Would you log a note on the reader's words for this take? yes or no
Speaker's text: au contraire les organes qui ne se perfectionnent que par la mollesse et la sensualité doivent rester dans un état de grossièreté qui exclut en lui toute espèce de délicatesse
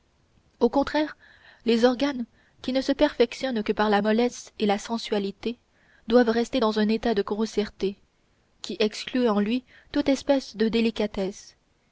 no